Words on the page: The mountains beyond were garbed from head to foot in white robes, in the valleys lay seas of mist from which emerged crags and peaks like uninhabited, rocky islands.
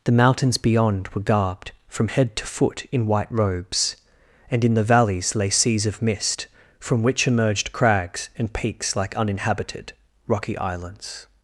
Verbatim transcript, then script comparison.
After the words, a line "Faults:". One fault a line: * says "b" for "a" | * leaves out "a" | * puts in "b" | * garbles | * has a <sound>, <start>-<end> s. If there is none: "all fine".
The mountains beyond were garbed from head to foot in white robes, and in the valleys lay seas of mist from which emerged crags and peaks like uninhabited, rocky islands.
Faults:
* puts in "and"